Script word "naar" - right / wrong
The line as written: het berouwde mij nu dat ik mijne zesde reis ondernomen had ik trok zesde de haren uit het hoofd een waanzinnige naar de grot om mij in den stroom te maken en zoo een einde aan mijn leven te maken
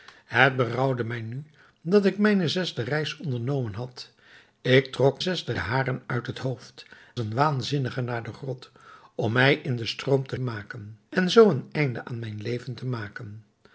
right